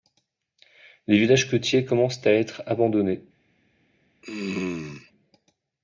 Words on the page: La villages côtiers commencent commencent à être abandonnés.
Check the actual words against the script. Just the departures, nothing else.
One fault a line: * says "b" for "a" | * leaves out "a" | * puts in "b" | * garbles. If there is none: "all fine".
* says "Les" for "La"
* leaves out "commencent"